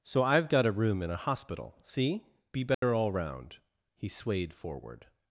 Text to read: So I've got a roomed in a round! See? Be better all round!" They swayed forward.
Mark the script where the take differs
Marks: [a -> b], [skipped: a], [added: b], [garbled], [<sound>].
So I've got a [roomed -> room] in a [round! -> hospital] See? Be better [dropout] all round!" [They -> He] swayed forward.